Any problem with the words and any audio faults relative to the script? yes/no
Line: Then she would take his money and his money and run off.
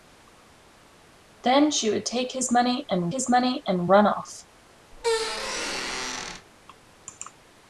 yes